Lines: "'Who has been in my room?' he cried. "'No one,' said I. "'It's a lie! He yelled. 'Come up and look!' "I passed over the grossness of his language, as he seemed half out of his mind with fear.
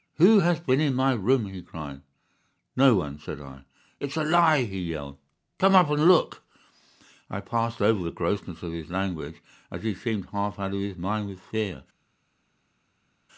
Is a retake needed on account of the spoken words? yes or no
no